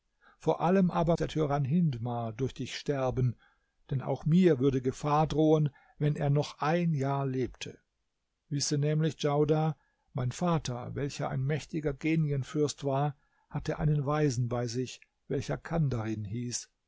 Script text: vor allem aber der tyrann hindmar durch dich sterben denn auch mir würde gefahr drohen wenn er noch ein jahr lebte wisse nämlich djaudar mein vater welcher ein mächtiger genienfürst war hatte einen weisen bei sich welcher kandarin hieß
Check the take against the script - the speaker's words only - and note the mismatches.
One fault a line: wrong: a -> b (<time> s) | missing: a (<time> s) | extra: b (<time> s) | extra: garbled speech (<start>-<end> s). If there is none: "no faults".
no faults